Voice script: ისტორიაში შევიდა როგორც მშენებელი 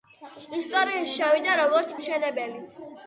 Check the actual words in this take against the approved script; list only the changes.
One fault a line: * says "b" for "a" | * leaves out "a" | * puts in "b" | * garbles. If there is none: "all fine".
all fine